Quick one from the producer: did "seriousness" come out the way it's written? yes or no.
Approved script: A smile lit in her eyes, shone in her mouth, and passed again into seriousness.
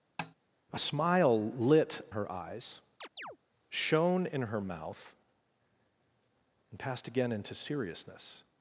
yes